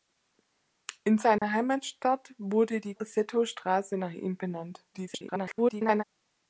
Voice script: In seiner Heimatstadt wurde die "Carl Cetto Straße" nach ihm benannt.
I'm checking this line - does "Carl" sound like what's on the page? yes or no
no